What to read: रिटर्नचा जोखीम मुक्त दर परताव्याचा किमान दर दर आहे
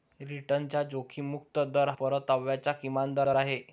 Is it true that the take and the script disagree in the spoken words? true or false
false